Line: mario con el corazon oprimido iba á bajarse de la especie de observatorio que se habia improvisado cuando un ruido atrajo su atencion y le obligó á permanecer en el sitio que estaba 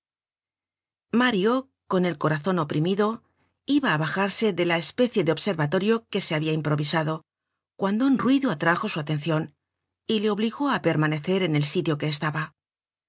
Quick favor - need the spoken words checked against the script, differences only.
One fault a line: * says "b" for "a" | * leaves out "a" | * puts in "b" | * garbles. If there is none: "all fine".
all fine